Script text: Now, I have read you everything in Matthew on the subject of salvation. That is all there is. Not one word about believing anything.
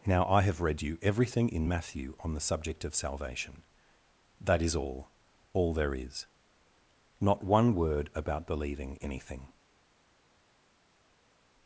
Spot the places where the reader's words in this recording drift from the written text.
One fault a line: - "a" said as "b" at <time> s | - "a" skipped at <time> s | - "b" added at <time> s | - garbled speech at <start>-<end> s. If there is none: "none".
- "all" added at 5.5 s